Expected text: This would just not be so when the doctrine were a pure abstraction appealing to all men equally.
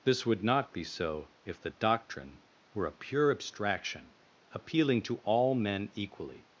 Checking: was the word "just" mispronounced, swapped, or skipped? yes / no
yes